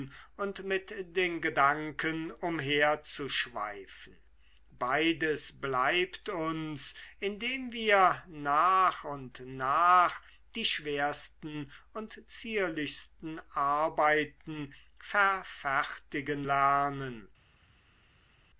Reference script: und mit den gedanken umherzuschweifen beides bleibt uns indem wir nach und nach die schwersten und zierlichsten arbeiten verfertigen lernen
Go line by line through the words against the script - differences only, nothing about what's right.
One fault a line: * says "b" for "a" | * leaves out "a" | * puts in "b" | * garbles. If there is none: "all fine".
all fine